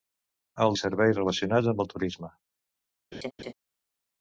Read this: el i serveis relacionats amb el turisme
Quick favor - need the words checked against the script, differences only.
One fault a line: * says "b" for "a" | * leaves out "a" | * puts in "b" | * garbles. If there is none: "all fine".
all fine